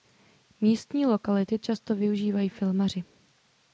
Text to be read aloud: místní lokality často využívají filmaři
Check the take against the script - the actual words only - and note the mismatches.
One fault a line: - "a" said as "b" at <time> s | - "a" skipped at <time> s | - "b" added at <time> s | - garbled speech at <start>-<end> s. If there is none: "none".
none